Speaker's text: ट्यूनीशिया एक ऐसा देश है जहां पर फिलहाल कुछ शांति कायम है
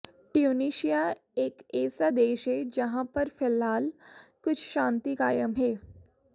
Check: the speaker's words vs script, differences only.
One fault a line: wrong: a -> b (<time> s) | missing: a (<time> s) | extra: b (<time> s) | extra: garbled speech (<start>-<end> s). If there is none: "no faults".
no faults